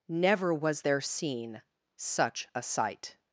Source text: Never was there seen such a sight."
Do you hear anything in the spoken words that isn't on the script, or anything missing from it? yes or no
no